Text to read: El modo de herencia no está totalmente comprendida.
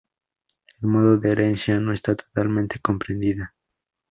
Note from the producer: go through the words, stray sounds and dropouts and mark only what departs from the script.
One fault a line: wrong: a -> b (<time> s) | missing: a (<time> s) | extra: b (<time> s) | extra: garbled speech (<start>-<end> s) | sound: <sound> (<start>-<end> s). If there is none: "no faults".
no faults